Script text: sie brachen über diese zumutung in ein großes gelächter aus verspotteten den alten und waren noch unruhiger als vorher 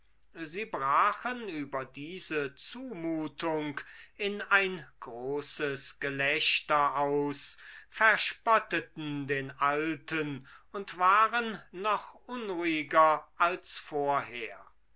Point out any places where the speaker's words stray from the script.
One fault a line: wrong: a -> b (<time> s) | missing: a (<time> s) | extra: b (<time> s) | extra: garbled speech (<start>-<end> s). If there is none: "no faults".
no faults